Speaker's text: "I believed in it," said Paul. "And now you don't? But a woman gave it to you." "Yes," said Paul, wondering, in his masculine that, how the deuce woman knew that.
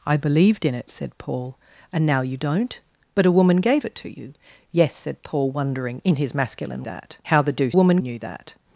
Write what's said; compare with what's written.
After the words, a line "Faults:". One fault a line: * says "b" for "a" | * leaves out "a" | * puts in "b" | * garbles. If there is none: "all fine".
"I believed in it," said Paul. "And now you don't? But a woman gave it to you." "Yes," said Paul, wondering, in his masculine that, how the deuce woman knew that.
Faults:
all fine